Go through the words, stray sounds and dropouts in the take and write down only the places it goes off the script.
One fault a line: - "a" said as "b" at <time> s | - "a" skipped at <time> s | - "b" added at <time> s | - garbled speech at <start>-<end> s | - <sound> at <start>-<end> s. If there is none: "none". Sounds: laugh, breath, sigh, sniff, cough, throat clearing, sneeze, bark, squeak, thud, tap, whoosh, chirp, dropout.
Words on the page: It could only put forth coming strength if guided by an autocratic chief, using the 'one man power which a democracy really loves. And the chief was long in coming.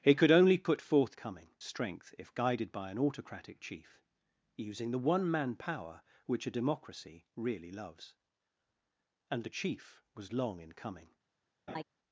- laugh at 11.7-11.8 s